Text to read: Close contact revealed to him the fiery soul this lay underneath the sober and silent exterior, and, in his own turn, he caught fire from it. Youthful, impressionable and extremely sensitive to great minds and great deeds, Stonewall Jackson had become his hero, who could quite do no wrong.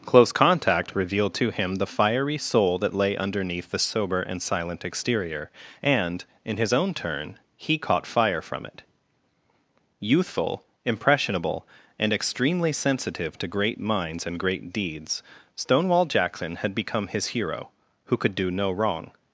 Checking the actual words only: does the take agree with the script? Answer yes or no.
no